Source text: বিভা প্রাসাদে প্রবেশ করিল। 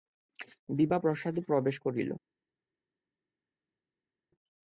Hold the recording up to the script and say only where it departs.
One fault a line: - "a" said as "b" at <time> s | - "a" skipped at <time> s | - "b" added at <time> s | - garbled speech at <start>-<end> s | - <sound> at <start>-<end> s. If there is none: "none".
none